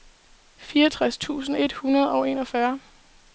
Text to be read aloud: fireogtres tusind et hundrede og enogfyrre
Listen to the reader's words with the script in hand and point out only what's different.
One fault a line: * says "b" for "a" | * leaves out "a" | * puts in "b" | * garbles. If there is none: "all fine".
all fine